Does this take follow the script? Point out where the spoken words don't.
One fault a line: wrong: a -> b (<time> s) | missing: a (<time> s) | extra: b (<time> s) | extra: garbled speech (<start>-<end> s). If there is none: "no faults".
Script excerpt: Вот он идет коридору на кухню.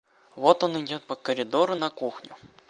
extra: по (1.0 s)